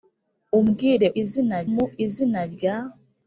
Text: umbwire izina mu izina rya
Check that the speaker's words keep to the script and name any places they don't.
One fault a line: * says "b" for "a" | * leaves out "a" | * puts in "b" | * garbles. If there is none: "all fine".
all fine